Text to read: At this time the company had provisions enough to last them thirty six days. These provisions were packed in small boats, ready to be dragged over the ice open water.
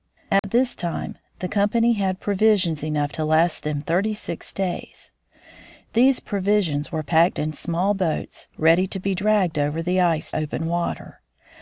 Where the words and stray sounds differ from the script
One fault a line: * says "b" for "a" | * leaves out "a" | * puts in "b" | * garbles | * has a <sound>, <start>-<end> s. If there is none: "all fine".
* has a dropout, 0.4-0.4 s